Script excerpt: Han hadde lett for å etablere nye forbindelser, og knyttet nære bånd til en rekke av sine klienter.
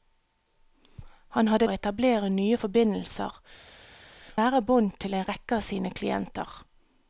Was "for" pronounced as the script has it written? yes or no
no